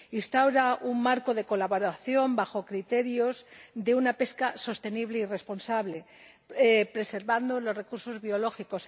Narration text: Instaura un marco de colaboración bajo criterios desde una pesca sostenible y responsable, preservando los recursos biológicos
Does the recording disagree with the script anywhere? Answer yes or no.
yes